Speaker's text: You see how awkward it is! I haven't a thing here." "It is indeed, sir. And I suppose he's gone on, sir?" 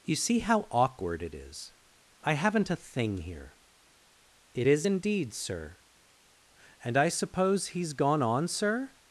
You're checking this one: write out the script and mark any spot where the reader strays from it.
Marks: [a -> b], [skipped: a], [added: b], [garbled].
You see how awkward it is! I haven't a thing here." "It is indeed, sir. And I suppose he's gone on, sir?"